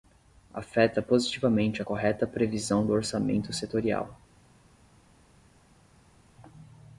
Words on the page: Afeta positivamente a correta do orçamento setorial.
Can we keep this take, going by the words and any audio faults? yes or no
no